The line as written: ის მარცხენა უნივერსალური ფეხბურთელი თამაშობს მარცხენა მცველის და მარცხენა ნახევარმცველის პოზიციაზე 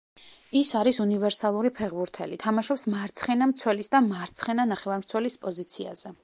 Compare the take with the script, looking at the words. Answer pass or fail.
fail